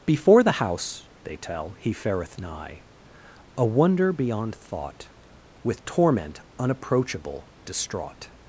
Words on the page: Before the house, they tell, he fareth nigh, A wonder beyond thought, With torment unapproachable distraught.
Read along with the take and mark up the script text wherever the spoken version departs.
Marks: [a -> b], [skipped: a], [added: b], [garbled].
Before the house, they tell, he fareth nigh, A wonder beyond thought, With torment unapproachable distraught.